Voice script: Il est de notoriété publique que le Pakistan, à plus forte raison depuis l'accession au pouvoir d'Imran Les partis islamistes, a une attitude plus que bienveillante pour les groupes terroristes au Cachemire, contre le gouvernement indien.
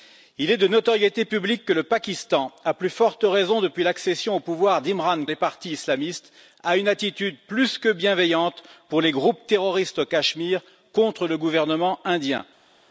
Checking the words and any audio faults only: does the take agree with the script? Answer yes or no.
yes